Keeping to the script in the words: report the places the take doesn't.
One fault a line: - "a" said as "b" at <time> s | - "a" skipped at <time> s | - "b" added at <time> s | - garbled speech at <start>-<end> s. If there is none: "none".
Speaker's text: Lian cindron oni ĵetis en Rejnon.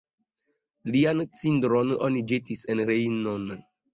none